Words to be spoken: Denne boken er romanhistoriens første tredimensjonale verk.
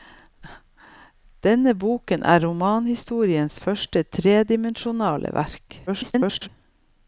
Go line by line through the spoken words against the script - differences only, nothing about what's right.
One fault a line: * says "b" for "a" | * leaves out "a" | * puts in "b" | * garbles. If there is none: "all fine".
* garbles